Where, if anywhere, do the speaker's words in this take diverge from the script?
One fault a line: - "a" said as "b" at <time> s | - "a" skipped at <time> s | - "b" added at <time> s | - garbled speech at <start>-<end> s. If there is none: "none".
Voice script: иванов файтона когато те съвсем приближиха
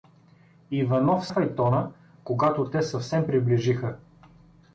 none